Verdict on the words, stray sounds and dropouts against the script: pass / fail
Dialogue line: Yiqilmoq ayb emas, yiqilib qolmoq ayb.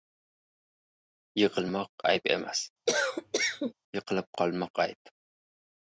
fail